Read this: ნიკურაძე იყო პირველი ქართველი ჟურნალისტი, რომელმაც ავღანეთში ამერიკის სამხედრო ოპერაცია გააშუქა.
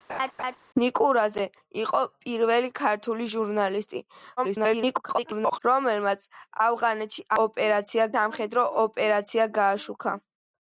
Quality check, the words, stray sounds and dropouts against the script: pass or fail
fail